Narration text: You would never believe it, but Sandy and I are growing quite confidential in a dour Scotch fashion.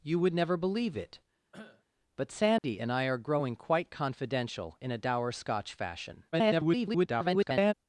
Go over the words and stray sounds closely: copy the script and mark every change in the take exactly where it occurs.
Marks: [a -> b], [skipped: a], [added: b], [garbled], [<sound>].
You would never believe it, [cough] but Sandy [dropout] and I are growing quite confidential in a dour Scotch fashion. [garbled]